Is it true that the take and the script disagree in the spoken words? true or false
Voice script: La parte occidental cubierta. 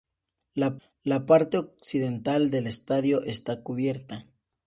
true